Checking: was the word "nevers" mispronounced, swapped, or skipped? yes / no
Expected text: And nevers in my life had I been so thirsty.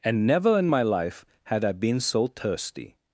yes